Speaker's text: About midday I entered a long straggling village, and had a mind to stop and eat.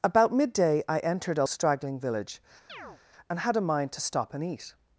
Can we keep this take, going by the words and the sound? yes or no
no